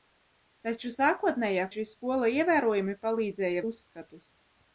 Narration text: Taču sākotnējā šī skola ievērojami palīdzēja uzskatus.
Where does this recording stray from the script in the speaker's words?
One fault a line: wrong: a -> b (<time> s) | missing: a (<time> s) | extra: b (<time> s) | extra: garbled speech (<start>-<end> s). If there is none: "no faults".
no faults